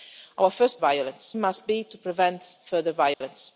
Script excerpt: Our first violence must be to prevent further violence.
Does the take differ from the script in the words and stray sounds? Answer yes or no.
yes